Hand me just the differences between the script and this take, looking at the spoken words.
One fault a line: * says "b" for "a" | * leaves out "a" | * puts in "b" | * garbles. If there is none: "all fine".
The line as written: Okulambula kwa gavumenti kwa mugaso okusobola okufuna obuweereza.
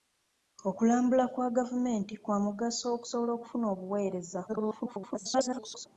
* garbles